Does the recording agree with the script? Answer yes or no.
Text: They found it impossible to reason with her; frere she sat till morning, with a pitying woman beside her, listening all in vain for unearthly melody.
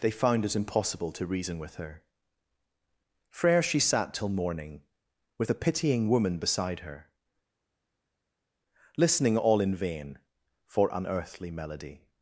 yes